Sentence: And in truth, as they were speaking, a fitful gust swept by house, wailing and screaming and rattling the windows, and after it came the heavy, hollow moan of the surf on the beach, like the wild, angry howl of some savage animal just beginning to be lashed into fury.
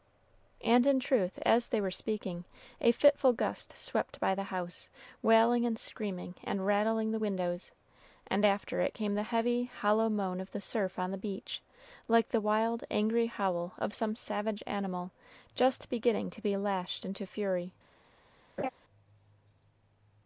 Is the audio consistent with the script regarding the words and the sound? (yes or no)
no